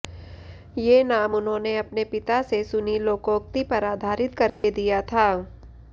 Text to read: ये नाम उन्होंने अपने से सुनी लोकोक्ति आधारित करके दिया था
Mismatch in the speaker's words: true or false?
true